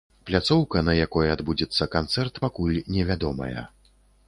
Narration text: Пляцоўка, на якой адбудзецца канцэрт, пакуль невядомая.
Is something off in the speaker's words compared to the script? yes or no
no